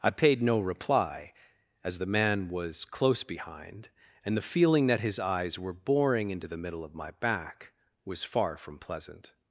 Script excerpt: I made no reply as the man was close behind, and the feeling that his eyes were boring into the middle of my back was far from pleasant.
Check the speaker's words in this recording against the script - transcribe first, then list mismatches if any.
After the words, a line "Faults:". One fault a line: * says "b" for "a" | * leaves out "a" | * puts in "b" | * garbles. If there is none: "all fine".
I paid no reply as the man was close behind, and the feeling that his eyes were boring into the middle of my back was far from pleasant.
Faults:
* says "paid" for "made"